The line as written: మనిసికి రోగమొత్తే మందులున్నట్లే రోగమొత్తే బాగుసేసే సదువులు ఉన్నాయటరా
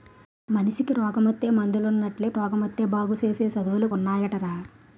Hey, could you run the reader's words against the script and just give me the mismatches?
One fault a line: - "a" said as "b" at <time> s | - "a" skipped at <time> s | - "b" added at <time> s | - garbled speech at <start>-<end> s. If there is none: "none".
none